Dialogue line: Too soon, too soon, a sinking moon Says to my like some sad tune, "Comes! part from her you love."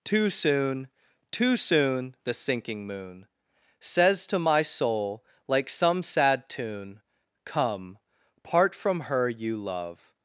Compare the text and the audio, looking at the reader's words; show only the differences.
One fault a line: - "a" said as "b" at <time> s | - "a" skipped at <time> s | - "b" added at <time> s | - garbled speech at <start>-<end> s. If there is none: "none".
- "a" said as "the" at 2.2 s
- "soul" added at 4.6 s
- "Comes" said as "Come" at 7.5 s